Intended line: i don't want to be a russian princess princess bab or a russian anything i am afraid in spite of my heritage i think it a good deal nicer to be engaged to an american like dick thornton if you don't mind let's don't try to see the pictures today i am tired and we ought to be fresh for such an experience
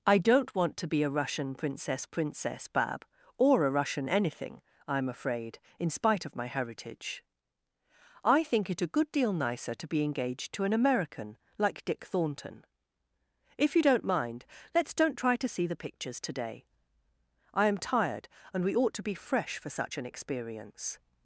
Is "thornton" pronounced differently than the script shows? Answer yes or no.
no